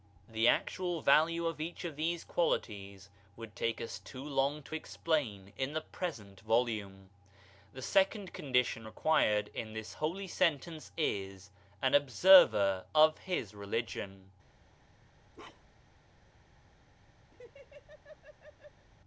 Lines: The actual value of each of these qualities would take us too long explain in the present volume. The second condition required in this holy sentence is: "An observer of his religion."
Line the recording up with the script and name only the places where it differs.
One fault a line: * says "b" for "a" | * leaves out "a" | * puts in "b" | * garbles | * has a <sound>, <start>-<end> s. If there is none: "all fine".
* puts in "to"
* has a bark, 15.3-15.9 s
* has a laugh, 17.3-18.9 s